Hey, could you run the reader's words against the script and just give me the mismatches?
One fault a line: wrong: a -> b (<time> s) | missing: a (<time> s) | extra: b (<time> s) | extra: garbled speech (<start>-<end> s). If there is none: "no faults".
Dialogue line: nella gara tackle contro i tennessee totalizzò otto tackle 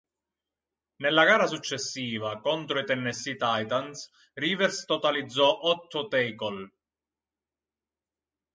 wrong: tackle -> successiva (1.4 s)
extra: titans rivers (3.4 s)